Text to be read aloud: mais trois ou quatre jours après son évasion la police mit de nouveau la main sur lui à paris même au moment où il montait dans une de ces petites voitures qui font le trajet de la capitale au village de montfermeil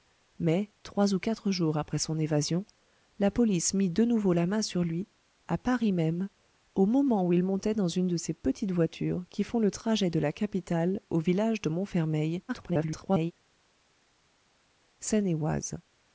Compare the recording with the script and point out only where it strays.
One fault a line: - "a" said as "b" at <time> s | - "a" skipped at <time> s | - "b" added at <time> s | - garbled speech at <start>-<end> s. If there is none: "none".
- garbled speech at 12.5-13.3 s